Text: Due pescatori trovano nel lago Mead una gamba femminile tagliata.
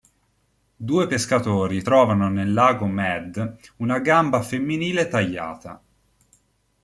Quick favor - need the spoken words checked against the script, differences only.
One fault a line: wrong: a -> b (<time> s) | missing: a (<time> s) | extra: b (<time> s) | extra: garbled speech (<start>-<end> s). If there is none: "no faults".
no faults